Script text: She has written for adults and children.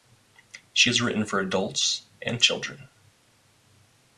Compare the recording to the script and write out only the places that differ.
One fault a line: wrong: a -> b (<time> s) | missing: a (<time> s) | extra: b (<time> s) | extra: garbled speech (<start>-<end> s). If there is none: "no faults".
no faults